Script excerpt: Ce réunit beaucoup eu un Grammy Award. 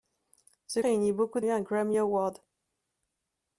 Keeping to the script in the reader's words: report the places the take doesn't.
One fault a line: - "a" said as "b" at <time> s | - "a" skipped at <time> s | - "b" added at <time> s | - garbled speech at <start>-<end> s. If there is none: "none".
none